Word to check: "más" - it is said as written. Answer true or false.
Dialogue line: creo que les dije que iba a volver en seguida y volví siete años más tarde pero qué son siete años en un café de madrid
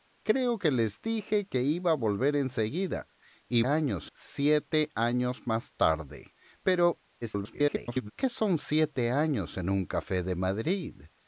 true